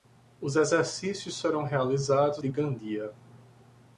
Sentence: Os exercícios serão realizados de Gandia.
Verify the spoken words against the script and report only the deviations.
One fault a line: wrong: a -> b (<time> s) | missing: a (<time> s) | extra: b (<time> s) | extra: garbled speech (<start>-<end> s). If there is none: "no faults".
no faults